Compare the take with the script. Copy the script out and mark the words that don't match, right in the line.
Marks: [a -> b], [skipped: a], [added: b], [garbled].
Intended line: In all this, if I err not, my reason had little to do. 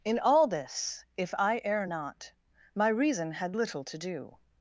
In all this, if I err not, my reason had little to do.